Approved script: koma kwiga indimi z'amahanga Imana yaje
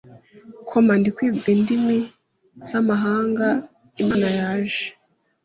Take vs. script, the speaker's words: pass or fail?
fail